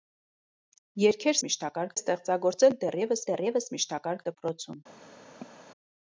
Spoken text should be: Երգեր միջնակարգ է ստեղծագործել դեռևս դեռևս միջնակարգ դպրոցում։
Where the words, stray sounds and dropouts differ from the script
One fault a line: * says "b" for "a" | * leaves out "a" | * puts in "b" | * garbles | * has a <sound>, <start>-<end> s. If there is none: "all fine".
* has a cough, 5.4-5.7 s